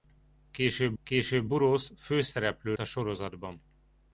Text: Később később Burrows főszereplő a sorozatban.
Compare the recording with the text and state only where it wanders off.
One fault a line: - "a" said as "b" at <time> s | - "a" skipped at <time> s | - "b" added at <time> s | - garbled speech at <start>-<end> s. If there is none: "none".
none